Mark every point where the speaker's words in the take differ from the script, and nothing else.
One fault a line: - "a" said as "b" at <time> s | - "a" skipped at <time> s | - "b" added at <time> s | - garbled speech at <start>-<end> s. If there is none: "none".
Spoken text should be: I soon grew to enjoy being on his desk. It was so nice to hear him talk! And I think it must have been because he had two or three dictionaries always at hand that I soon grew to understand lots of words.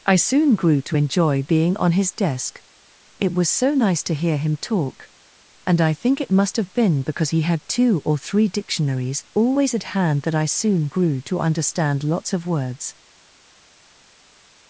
none